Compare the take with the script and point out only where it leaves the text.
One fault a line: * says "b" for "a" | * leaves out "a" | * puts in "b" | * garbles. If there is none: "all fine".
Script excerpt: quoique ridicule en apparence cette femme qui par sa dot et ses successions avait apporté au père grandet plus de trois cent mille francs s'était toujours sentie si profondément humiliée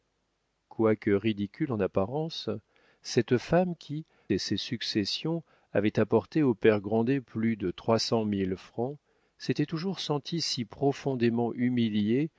* leaves out "par sa dot"